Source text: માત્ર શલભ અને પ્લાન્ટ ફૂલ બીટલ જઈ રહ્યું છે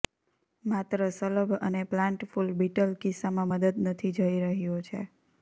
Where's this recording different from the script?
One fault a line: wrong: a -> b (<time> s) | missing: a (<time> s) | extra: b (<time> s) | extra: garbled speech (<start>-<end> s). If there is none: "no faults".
extra: કિસ્સામાં મદદ નથી (3.0 s)